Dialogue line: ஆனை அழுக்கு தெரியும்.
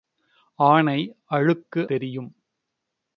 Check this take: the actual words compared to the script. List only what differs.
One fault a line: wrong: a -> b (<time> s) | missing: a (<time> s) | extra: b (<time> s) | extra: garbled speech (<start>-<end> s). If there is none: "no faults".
no faults